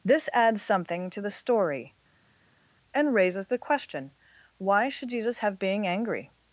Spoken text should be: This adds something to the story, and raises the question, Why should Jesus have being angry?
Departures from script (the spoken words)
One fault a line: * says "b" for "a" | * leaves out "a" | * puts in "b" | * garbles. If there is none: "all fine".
all fine